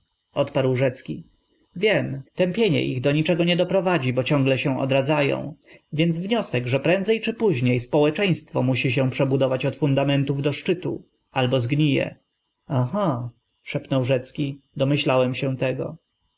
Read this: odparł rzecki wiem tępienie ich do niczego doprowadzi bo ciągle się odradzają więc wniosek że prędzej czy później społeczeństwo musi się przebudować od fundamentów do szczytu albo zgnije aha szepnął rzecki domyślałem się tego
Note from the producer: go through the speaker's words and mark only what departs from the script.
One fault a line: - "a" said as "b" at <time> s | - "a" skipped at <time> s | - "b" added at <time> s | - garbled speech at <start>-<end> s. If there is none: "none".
- "nie" added at 3.4 s